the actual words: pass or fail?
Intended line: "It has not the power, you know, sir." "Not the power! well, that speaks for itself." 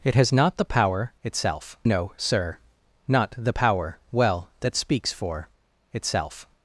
fail